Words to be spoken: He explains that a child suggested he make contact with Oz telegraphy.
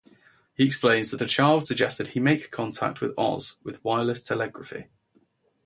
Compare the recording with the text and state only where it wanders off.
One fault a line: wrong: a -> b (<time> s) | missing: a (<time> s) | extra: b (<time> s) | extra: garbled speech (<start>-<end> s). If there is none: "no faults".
extra: with wireless (3.6 s)